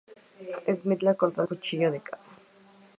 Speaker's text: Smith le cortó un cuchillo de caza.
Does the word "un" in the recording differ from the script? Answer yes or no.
no